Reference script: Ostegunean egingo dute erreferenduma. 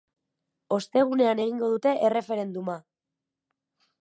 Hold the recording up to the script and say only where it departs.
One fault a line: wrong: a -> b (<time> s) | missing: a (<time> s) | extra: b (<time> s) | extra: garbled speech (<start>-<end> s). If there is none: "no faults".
no faults